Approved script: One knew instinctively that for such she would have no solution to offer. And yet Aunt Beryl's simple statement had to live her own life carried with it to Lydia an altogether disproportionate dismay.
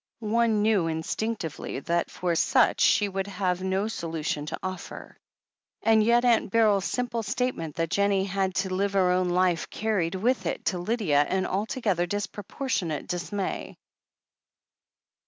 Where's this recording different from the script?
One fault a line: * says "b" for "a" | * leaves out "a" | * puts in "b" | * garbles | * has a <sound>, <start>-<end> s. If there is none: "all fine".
* puts in "that Jennie"